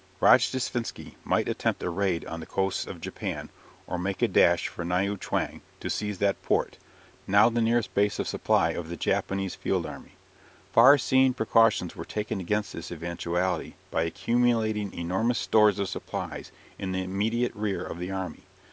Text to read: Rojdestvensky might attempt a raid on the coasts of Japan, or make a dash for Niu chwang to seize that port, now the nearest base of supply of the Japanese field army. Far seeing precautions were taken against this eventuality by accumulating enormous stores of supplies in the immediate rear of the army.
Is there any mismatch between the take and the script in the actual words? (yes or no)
no